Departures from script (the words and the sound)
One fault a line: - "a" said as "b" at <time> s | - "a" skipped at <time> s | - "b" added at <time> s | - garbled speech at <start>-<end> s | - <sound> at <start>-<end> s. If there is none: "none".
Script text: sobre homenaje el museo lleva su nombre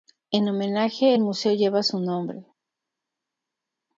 - "sobre" said as "en" at 0.3 s